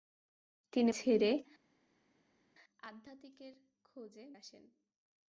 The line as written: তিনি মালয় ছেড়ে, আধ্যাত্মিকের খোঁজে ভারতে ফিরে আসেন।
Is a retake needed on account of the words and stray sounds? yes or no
yes